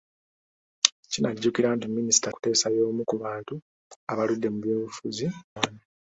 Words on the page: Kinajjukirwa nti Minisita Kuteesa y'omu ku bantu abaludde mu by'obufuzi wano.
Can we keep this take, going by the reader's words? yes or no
yes